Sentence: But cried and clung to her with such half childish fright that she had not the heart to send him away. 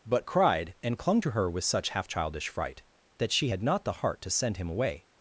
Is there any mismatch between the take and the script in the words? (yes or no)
no